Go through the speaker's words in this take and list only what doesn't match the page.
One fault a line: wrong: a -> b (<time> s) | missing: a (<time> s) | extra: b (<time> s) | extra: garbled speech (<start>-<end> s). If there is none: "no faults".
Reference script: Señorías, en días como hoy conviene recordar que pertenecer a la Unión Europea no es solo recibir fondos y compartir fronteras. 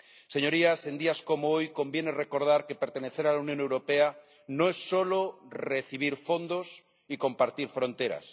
no faults